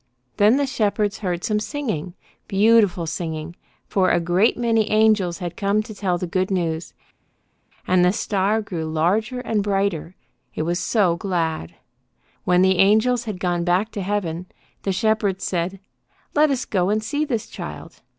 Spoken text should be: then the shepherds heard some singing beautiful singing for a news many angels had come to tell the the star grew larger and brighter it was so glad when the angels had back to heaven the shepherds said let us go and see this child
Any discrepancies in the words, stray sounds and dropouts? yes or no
yes